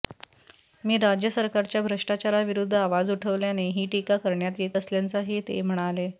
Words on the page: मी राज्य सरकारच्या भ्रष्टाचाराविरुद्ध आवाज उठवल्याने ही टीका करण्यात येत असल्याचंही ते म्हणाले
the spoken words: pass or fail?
pass